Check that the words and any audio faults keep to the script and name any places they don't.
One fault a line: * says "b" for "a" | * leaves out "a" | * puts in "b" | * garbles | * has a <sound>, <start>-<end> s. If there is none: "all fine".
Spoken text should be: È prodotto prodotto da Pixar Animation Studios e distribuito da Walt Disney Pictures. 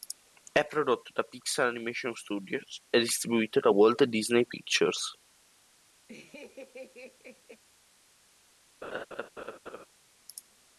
* leaves out "prodotto"
* has a laugh, 6.1-7.6 s
* has a laugh, 8.8-9.9 s